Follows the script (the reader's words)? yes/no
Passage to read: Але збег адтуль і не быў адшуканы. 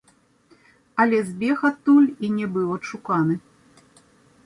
yes